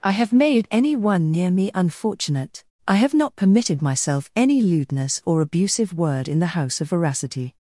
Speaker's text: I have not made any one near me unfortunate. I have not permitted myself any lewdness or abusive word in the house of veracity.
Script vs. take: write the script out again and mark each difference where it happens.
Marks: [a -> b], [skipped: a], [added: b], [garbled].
I have [skipped: not] made any one near me unfortunate. I have not permitted myself any lewdness or abusive word in the house of veracity.